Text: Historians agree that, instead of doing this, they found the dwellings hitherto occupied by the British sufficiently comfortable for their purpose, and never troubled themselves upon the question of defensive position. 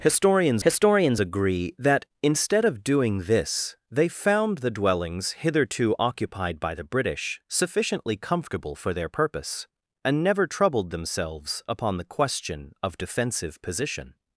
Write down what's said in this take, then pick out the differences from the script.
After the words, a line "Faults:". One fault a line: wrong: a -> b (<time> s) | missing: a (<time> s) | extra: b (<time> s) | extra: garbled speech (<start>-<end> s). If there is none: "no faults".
Historians historians agree that, instead of doing this, they found the dwellings hitherto occupied by the British sufficiently comfortable for their purpose, and never troubled themselves upon the question of defensive position.
Faults:
extra: historians (0.6 s)